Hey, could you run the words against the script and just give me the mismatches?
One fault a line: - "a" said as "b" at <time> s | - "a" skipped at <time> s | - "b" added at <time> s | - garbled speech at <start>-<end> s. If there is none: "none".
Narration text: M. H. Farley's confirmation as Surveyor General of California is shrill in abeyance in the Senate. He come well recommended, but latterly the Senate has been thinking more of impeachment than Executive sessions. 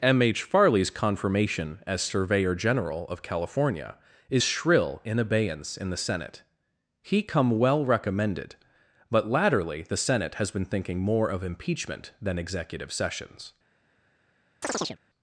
none